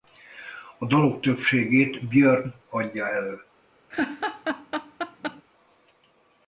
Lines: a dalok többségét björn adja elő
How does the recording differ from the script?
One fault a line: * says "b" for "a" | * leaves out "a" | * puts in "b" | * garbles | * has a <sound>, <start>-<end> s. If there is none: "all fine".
* has a laugh, 3.9-5.4 s